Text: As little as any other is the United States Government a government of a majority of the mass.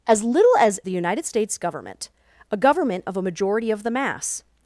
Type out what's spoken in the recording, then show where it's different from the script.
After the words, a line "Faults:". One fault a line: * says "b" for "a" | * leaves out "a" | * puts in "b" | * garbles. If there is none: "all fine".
As little as the United States Government a government of a majority of the mass.
Faults:
* leaves out "any other is"